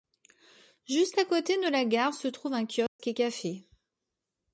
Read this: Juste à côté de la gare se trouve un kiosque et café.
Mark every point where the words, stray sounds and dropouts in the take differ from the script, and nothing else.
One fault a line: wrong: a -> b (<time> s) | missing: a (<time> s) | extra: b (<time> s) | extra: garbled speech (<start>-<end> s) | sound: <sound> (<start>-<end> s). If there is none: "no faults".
sound: dropout (2.9-3.0 s)